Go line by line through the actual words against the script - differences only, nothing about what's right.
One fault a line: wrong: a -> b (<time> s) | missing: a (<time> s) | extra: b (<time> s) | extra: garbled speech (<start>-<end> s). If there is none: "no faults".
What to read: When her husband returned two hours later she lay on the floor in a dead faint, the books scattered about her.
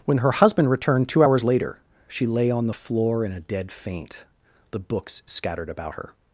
no faults